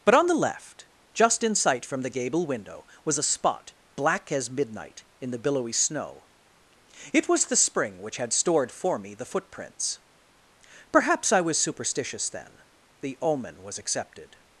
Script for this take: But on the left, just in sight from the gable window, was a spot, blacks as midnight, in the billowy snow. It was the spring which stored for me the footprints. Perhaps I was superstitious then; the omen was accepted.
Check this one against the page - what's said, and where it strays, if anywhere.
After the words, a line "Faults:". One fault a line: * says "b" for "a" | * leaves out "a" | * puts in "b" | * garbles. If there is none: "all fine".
But on the left, just in sight from the gable window, was a spot, black as midnight, in the billowy snow. It was the spring which had stored for me the footprints. Perhaps I was superstitious then; the omen was accepted.
Faults:
* says "black" for "blacks"
* puts in "had"